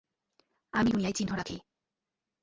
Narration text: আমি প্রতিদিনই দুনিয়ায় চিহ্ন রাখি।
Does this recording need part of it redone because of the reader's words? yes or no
yes